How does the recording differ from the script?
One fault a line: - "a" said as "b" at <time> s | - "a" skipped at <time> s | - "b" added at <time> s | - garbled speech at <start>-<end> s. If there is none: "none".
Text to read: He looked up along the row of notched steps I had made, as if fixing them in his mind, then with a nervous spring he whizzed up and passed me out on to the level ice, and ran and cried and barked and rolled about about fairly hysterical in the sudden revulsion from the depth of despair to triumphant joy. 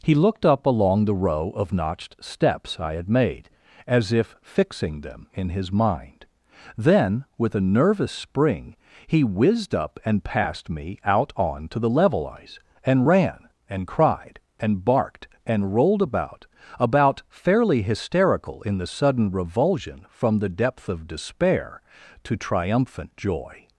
none